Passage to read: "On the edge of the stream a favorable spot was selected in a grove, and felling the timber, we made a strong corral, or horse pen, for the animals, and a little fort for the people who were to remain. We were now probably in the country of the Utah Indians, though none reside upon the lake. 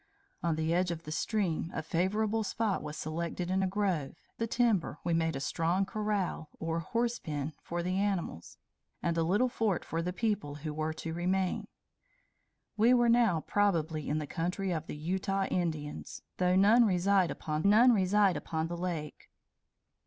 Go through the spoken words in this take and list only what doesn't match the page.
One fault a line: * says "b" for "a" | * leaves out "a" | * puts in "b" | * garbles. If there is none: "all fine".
* leaves out "and felling"
* puts in "none reside upon"